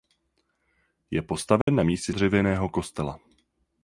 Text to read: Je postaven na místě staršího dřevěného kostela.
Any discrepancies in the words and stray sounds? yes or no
yes